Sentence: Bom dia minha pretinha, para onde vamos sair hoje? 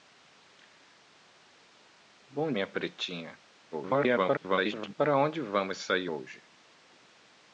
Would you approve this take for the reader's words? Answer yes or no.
no